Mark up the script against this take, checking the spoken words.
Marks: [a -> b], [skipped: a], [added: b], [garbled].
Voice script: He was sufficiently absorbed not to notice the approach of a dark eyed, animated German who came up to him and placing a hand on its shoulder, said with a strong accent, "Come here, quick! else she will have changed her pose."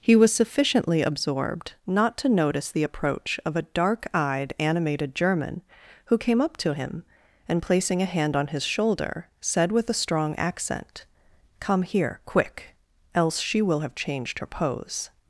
He was sufficiently absorbed not to notice the approach of a dark eyed, animated German who came up to him and placing a hand on [its -> his] shoulder, said with a strong accent, "Come here, quick! else she will have changed her pose."